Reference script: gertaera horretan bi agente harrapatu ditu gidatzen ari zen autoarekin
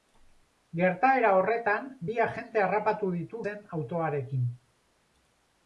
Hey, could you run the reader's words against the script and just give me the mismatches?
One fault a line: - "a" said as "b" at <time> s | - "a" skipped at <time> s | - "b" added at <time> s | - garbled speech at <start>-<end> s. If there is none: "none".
- "gidatzen ari" skipped at 3.4 s